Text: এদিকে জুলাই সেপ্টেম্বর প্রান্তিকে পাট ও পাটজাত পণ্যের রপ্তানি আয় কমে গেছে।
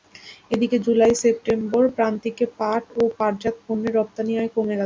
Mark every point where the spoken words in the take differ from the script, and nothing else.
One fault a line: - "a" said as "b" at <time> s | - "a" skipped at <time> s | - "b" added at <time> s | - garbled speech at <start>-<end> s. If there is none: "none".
none